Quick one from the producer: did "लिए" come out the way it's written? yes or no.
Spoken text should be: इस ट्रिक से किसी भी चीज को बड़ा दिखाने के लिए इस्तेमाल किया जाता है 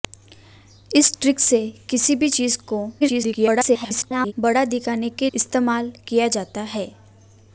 no